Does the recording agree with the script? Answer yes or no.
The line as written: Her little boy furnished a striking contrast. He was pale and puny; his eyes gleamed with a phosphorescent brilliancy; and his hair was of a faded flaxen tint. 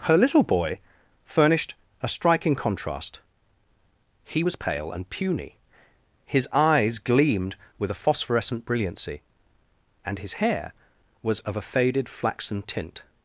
yes